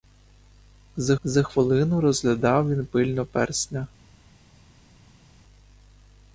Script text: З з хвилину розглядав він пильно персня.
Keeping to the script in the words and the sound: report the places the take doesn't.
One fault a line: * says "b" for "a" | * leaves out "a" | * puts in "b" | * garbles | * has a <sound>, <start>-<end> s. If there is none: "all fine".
all fine